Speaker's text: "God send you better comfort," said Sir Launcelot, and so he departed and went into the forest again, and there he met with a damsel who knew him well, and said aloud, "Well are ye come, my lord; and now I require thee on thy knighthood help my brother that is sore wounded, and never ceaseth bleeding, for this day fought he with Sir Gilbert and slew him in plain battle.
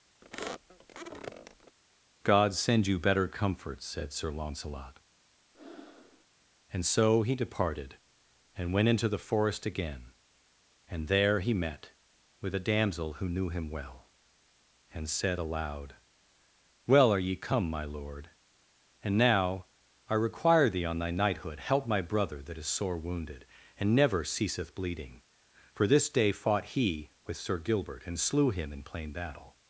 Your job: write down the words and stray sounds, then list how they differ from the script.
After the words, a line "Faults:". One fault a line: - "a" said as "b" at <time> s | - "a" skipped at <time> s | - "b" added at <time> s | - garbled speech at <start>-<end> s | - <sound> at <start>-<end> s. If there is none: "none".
"God send you better comfort," said Sir Launcelot, and so he departed and went into the forest again, and there he met with a damsel who knew him well, and said aloud, "Well are ye come, my lord; and now I require thee on thy knighthood help my brother that is sore wounded, and never ceaseth bleeding, for this day fought he with Sir Gilbert and slew him in plain battle.
Faults:
- squeak at 0.2-1.8 s
- breath at 5.5-6.2 s